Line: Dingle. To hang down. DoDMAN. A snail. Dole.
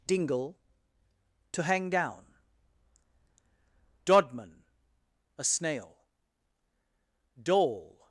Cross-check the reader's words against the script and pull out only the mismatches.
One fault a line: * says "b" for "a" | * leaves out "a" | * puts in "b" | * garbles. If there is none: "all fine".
all fine